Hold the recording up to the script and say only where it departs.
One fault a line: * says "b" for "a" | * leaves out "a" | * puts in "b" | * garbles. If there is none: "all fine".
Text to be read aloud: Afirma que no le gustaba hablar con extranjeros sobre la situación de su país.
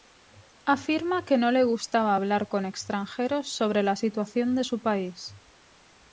all fine